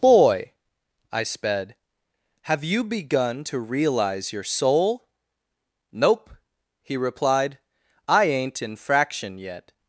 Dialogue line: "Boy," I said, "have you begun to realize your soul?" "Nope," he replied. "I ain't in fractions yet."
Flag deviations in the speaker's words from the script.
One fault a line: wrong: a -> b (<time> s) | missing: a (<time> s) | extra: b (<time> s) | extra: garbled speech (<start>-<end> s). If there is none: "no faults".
wrong: said -> sped (1.2 s)
wrong: fractions -> fraction (8.8 s)